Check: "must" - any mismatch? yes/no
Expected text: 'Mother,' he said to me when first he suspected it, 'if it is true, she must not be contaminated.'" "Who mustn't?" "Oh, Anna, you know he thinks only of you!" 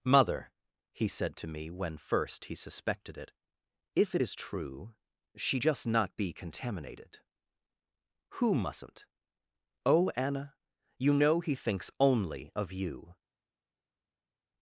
yes